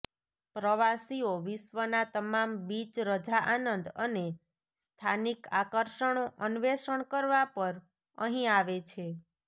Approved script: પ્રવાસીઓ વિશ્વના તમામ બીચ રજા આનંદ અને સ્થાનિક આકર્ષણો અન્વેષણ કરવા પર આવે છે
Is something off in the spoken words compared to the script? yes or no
yes